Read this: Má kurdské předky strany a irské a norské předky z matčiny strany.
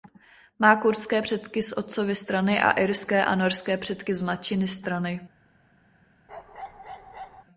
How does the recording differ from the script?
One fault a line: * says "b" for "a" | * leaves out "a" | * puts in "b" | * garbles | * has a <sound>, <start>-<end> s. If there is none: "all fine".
* puts in "z otcovy"
* has a bark, 6.3-7.4 s